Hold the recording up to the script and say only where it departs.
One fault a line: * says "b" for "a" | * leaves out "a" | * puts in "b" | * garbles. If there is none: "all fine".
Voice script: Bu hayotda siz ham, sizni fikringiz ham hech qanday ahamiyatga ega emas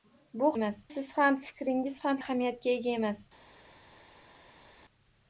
* says "emas" for "hayotda"
* leaves out "sizni"
* leaves out "hech qanday"